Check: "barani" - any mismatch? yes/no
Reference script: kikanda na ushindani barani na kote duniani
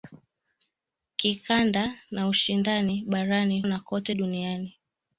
no